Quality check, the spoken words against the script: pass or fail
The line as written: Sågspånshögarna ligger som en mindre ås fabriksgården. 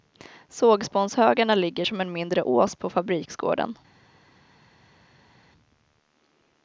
fail